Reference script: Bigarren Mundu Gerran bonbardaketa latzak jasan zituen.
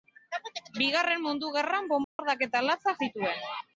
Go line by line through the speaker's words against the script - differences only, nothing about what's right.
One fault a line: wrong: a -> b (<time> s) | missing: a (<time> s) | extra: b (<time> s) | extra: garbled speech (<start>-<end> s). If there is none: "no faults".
missing: jasan (3.0 s)